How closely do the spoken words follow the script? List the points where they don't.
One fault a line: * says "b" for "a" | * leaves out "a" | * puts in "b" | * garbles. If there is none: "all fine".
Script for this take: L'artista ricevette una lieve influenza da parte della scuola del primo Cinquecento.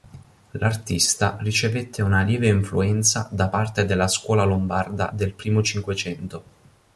* puts in "lombarda"